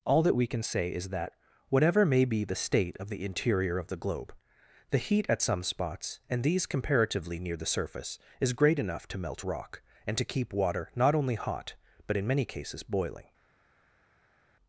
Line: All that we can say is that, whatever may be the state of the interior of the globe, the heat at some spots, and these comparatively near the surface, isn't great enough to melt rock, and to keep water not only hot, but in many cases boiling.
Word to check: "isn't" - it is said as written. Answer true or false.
false